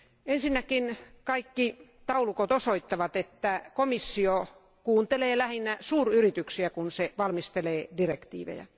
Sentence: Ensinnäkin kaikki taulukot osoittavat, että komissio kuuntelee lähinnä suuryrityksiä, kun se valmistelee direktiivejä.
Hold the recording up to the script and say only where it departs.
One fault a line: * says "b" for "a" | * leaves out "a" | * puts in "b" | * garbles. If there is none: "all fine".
all fine